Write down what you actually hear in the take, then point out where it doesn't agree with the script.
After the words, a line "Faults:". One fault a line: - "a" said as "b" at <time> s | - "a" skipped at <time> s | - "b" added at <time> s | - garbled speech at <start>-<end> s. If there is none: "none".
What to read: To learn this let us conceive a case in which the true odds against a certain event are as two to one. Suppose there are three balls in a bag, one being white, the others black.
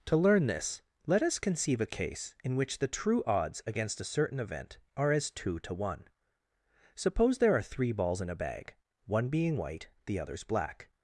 To learn this let us conceive a case in which the true odds against a certain event are as two to one. Suppose there are three balls in a bag, one being white, the others black.
Faults:
none